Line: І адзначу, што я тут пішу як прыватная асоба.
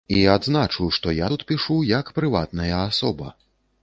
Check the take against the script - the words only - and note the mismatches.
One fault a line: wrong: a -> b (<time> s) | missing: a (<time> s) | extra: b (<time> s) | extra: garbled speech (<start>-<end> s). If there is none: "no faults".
no faults